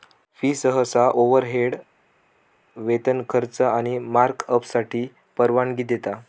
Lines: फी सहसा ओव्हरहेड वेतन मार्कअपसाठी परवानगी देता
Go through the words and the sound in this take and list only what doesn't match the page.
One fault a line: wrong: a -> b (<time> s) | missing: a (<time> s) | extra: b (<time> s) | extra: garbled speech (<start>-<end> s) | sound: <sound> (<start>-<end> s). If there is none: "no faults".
extra: खर्च आणि (3.3 s)